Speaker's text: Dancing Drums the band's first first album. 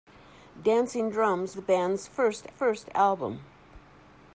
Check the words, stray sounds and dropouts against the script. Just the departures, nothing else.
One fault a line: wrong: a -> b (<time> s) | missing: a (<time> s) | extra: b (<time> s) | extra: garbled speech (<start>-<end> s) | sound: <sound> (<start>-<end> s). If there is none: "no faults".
no faults